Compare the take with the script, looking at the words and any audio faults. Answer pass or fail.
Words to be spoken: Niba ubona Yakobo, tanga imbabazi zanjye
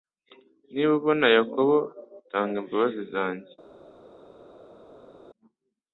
pass